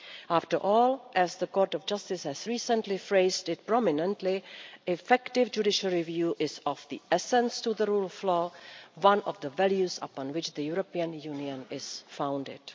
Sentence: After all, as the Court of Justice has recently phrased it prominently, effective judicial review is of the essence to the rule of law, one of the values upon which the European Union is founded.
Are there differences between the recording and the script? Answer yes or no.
no